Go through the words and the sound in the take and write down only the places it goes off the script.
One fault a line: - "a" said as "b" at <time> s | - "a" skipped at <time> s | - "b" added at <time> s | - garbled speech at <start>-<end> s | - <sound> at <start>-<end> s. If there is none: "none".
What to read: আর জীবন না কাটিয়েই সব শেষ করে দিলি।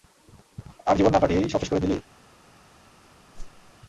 - whoosh at 3.3-3.7 s